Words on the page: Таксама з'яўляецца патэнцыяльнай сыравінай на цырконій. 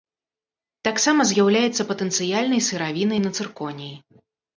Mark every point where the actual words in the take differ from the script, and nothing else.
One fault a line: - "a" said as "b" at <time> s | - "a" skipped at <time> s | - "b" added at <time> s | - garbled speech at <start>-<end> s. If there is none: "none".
none